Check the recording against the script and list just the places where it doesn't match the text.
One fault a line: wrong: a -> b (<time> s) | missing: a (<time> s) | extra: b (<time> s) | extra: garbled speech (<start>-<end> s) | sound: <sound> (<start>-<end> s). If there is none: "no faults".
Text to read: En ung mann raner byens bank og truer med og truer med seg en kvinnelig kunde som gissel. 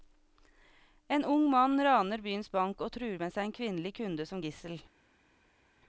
missing: og truer med (3.3 s)